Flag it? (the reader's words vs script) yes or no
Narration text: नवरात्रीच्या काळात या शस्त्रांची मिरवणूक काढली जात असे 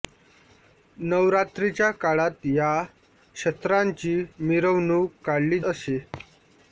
yes